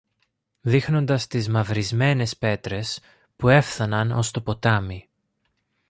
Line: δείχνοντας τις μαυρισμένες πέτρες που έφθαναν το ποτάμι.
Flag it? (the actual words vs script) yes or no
yes